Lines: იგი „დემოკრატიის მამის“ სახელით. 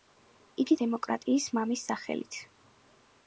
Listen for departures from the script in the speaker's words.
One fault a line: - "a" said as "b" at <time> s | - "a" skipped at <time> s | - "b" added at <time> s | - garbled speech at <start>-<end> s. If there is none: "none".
none